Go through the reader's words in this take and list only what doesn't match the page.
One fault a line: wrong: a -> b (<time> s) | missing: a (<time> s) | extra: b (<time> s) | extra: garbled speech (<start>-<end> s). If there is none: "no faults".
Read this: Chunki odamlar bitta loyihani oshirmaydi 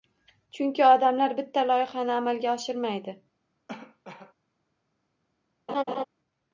extra: amalga (2.2 s)